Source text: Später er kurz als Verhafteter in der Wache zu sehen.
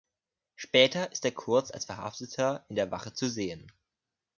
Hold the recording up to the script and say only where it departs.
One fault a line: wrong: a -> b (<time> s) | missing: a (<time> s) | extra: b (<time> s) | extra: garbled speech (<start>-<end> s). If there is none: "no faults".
extra: ist (1.1 s)